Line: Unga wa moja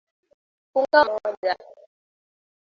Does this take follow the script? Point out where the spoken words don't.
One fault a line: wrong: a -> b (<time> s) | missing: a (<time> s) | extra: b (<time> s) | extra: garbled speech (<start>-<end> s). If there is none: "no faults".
no faults